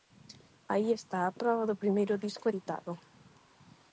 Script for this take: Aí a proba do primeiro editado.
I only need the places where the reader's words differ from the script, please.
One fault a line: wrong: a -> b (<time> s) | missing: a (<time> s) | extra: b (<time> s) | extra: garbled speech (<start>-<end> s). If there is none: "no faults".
extra: está (0.9 s)
extra: disco (2.2 s)